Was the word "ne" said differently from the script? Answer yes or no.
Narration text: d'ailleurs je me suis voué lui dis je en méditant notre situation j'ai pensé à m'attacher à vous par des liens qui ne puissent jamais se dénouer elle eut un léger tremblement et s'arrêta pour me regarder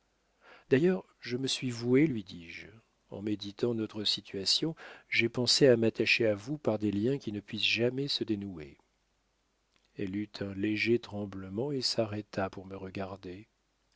no